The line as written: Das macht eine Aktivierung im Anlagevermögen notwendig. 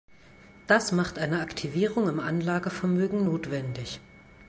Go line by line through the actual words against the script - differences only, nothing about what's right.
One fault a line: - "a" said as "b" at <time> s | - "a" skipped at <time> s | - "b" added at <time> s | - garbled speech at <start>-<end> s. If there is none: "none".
none